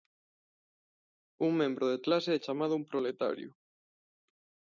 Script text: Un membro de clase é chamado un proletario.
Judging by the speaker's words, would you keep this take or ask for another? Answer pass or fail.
pass